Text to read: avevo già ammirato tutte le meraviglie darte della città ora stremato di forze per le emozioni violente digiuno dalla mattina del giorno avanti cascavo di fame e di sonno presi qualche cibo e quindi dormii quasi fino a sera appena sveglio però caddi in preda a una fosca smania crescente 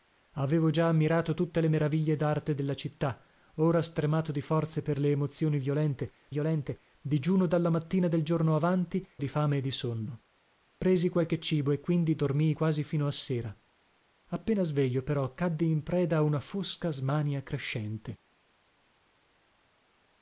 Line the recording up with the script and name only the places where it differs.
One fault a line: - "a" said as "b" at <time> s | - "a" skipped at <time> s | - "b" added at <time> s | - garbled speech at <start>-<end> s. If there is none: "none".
- "violente" added at 6.3 s
- "cascavo" skipped at 9.1 s